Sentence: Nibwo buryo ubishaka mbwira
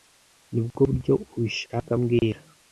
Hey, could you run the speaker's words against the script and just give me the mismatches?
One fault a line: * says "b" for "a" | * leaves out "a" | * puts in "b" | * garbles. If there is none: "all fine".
all fine